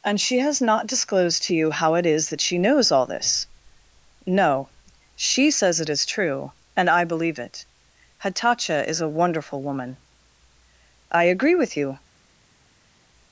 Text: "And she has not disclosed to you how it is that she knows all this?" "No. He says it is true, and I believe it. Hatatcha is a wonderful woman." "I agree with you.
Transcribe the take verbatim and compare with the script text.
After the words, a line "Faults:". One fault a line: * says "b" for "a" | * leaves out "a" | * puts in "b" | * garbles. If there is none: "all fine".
"And she has not disclosed to you how it is that she knows all this?" "No. She says it is true, and I believe it. Hatatcha is a wonderful woman." "I agree with you.
Faults:
* says "She" for "He"